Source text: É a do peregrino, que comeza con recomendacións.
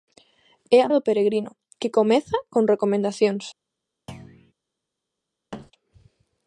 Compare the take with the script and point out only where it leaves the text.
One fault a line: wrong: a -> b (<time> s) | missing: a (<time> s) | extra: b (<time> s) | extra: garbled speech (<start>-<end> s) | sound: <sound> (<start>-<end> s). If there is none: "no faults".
sound: thud (4.1-4.5 s)
sound: thud (5.5-5.7 s)